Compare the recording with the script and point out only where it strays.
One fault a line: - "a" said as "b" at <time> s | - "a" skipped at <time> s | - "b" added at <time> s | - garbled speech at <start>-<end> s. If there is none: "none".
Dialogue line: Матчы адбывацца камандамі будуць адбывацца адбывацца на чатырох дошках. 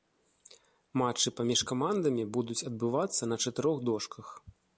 - "адбывацца" said as "паміж" at 1.4 s
- "адбывацца" skipped at 3.2 s